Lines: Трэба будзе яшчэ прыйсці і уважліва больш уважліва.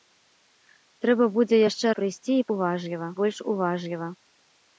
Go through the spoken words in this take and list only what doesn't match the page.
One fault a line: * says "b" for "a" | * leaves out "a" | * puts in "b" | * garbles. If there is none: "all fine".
all fine